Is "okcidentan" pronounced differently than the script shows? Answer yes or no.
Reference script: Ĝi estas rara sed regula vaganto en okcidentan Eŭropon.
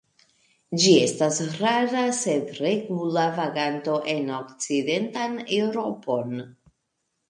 no